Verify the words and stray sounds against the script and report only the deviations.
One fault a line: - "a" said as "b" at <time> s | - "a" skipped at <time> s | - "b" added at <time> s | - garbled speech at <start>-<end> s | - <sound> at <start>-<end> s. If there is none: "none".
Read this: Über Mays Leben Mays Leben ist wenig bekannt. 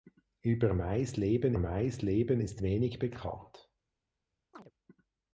- chirp at 4.5-4.7 s